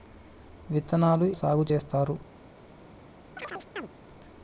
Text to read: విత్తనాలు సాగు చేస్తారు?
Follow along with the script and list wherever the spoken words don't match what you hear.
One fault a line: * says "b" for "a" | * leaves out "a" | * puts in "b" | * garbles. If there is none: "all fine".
all fine